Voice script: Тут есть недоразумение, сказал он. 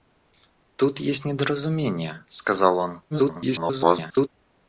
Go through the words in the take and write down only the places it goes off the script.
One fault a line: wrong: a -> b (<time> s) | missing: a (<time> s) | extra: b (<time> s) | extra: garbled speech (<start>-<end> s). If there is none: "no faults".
extra: garbled speech (3.1-4.3 s)